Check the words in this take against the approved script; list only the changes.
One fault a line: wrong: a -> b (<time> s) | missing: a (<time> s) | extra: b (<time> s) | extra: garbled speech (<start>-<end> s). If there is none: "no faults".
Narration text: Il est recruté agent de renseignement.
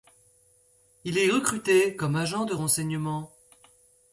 extra: comme (1.9 s)